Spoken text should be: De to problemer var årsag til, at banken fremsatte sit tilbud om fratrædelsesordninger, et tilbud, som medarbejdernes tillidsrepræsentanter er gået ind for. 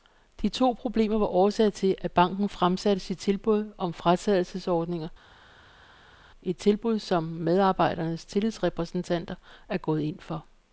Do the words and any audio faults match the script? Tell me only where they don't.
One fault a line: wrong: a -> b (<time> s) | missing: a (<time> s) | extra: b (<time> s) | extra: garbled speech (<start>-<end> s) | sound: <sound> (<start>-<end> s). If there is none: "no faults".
no faults